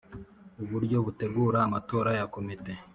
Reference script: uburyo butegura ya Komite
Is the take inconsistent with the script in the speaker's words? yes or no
yes